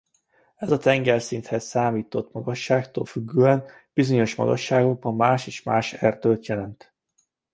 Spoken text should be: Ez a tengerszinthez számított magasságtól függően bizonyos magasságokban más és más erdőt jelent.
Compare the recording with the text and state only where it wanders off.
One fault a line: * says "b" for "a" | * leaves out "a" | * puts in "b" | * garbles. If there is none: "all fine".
all fine